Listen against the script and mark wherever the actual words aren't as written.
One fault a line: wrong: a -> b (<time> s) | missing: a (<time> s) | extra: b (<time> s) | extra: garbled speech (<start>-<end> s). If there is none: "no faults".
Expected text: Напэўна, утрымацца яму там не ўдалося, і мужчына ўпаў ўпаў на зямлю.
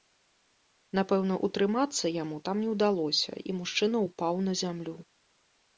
missing: ўпаў (4.3 s)